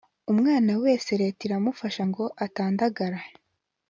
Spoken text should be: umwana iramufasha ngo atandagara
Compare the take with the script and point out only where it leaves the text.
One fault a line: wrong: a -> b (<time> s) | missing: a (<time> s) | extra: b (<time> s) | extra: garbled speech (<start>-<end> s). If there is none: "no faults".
extra: wese leta (0.8 s)